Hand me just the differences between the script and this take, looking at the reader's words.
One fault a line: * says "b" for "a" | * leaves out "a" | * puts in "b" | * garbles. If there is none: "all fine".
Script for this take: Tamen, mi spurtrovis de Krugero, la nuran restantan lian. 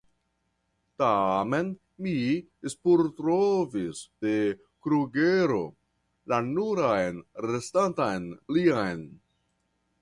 all fine